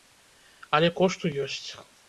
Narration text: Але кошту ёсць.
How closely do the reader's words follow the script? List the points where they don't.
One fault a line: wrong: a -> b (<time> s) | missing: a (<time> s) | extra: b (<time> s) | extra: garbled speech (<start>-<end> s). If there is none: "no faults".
no faults